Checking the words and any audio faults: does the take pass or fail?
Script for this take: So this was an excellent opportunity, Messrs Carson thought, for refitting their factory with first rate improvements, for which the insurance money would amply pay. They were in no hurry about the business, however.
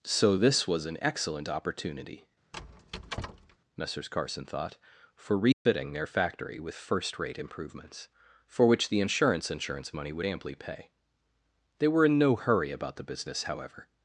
fail